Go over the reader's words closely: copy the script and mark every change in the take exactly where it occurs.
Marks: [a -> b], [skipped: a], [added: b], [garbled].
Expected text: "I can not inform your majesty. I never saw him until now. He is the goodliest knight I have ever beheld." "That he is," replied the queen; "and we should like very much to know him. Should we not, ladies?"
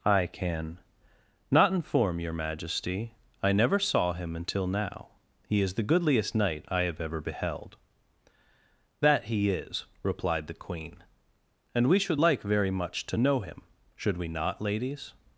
"I can not inform your majesty. I never saw him until now. He is the goodliest knight I have ever beheld." "That he is," replied the queen; "and we should like very much to know him. Should we not, ladies?"